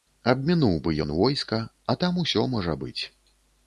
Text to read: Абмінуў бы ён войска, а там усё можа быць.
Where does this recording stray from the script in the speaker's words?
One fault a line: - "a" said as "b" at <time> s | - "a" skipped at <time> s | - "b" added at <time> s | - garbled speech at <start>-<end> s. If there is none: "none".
none